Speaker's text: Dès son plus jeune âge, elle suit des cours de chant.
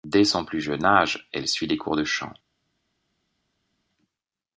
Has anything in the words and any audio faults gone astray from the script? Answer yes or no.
no